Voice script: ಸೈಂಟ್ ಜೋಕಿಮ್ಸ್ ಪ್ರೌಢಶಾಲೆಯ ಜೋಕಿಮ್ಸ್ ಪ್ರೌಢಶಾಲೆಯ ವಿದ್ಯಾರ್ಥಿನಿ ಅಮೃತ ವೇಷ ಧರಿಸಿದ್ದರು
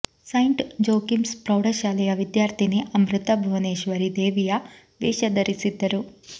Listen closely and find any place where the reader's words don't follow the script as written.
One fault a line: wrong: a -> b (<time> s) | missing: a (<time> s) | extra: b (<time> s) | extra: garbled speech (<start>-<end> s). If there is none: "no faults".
wrong: ಜೋಕಿಮ್ಸ್ ಪ್ರೌಢಶಾಲೆಯ ವಿದ್ಯಾರ್ಥಿನಿ ಅಮೃತ -> ವಿದ್ಯಾರ್ಥಿನಿ ಅಮೃತ ಭುವನೇಶ್ವರಿ ದೇವಿಯ (2.1 s)